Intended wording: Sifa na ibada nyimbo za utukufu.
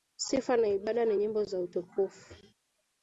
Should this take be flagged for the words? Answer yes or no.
yes